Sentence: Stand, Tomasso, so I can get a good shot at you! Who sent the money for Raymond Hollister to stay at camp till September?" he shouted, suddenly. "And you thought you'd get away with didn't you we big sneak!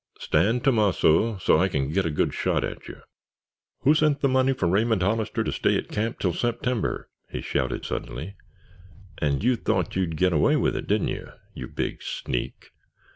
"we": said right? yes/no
no